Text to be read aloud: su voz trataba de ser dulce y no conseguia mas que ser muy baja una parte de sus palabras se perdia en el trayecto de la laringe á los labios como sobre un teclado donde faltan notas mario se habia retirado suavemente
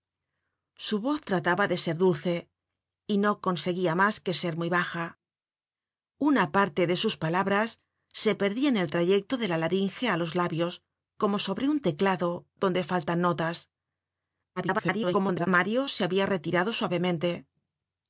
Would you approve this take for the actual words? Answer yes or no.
no